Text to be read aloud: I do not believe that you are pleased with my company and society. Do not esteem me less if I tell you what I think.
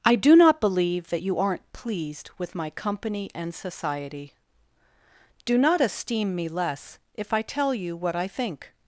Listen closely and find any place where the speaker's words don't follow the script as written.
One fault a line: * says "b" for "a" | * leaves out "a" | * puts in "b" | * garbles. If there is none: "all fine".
* says "aren't" for "are"